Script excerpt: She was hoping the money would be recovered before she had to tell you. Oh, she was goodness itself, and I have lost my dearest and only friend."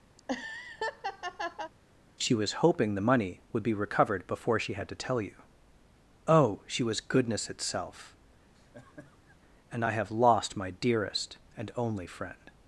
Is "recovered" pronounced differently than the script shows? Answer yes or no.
no